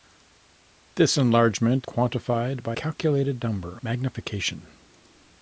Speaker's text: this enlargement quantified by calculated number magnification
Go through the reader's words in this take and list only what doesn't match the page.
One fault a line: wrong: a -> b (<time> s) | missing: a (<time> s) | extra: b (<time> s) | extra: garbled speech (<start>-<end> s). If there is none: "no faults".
no faults